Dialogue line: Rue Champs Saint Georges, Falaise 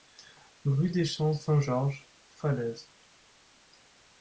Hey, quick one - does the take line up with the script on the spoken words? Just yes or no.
no